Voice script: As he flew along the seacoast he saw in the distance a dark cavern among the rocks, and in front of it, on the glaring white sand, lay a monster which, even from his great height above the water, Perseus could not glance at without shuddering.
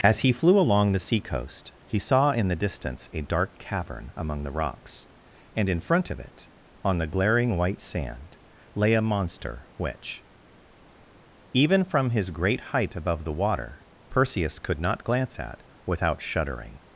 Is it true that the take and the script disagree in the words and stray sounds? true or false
false